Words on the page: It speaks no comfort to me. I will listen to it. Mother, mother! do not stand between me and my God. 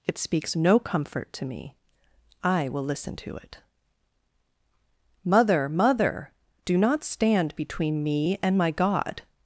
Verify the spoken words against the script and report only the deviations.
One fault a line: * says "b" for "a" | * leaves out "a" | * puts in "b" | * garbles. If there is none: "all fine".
all fine